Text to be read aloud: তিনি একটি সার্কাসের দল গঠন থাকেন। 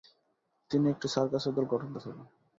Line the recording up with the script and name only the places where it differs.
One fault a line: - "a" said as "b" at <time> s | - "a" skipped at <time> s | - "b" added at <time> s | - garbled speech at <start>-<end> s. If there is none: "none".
none